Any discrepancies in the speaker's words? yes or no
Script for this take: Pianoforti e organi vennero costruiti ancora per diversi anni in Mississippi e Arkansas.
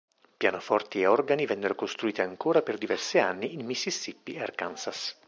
no